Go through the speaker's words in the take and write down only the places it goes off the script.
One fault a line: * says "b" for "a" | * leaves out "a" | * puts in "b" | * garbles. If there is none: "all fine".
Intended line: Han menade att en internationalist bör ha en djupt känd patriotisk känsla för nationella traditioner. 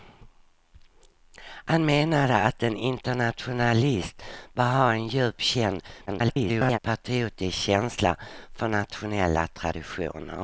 * garbles